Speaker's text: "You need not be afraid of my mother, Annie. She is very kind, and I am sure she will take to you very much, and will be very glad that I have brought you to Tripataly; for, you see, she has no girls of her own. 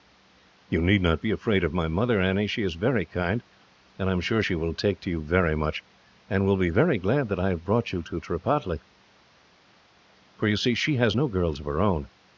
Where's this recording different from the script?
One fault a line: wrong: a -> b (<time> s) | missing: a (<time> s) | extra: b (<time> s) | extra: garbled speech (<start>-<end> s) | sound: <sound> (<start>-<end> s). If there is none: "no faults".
no faults